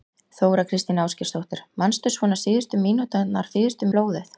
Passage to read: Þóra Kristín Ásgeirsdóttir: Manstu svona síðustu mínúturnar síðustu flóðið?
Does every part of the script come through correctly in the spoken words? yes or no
yes